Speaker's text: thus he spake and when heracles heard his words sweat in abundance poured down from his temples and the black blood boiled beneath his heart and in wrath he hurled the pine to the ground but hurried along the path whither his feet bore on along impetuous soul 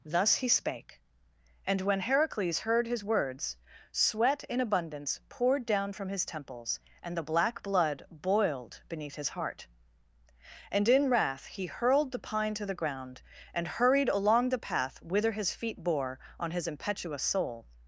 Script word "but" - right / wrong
wrong